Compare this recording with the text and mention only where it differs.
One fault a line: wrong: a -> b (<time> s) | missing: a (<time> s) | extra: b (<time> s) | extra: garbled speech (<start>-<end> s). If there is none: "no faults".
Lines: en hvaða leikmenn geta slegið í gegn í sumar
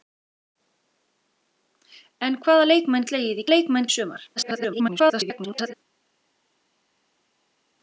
missing: geta (3.1 s)
wrong: gegn -> leikmenn (3.5 s)
extra: garbled speech (4.4-5.7 s)